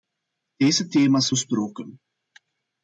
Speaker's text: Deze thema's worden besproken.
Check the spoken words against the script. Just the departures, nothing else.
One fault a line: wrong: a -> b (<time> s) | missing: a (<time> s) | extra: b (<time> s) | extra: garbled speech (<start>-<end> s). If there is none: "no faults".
missing: worden (1.3 s)